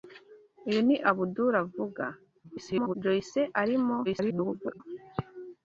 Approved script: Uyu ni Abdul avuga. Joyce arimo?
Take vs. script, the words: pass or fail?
fail